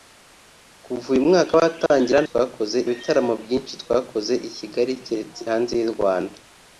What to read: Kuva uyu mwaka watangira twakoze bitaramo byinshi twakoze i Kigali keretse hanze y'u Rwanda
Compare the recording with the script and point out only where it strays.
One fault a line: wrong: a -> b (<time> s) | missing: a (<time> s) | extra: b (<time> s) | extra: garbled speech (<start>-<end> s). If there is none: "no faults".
no faults